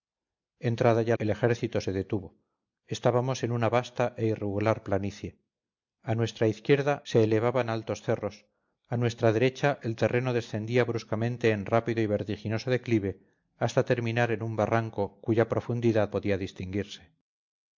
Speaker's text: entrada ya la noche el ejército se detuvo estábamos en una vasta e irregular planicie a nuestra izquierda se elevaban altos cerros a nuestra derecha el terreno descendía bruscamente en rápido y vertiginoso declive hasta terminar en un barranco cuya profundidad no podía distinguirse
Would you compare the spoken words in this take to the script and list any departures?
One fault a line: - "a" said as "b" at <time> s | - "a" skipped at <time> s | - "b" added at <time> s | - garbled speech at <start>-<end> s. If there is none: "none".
- "la noche" skipped at 1.1 s
- "no" skipped at 16.1 s